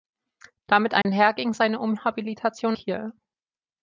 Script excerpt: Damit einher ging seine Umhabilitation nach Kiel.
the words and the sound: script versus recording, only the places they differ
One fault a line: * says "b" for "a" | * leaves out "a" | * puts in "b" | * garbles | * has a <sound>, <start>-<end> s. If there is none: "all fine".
* has a dropout, 1.0-1.1 s
* leaves out "nach"